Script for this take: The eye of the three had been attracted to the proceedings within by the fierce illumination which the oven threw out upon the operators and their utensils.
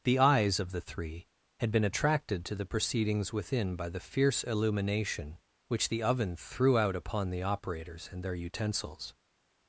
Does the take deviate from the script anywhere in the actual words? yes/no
yes